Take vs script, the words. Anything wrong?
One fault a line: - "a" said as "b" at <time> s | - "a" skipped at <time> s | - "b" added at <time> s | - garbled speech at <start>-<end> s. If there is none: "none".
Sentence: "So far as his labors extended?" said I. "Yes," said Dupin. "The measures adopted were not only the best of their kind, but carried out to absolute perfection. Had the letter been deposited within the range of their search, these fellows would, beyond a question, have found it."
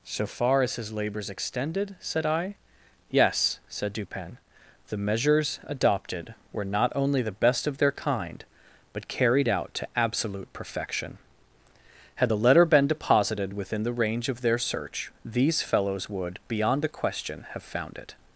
none